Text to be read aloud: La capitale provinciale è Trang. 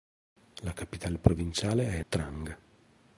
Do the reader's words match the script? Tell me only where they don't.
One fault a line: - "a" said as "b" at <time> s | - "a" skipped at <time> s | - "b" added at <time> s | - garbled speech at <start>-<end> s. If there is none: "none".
none